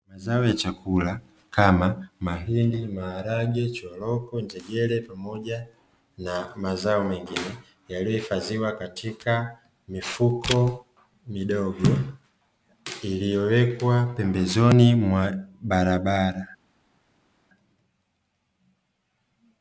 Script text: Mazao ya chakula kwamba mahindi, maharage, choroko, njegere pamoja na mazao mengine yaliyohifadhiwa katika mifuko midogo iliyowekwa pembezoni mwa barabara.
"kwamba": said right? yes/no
no